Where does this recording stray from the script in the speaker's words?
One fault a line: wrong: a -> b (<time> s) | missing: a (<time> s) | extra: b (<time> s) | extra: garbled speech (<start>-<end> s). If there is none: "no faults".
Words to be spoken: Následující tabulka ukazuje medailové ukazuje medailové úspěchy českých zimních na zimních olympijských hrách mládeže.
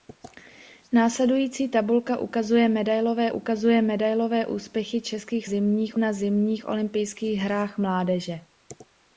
no faults